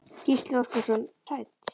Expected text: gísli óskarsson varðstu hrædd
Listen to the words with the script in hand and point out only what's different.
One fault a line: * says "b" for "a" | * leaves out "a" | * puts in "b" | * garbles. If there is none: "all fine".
* leaves out "varðstu"